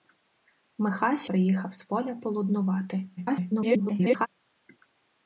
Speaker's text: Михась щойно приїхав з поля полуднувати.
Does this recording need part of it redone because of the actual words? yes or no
yes